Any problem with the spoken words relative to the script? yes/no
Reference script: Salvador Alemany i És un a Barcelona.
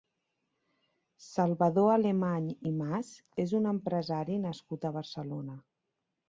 yes